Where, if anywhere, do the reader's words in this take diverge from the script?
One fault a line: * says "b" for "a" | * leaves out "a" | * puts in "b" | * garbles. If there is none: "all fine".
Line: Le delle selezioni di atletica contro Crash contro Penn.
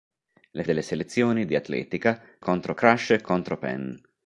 all fine